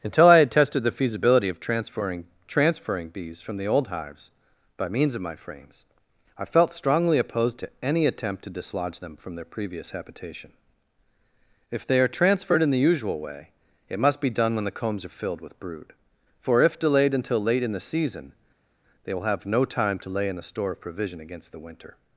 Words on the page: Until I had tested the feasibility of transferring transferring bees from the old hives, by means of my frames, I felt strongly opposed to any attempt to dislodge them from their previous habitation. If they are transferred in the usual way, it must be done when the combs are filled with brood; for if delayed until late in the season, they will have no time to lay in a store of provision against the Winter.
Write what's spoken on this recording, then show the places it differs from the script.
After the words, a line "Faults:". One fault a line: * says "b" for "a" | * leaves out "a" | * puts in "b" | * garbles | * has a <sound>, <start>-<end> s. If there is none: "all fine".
Until I had tested the feasibility of transferring transferring bees from the old hives, by means of my frames, I felt strongly opposed to any attempt to dislodge them from their previous habitation. If they are transferred in the usual way, it must be done when the combs are filled with brood; for if delayed until late in the season, they will have no time to lay in a store of provision against the Winter.
Faults:
all fine